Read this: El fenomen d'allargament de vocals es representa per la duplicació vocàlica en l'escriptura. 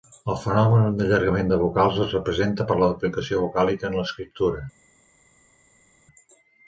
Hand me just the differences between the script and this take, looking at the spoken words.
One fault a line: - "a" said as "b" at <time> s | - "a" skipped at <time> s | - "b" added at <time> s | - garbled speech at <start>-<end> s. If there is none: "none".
none